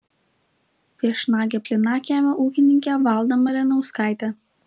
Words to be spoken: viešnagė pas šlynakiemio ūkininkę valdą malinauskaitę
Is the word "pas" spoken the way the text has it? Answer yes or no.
no